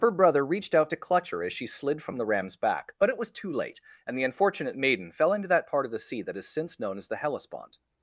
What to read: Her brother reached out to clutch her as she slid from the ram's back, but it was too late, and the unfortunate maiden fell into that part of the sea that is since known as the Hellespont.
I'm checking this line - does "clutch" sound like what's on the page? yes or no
yes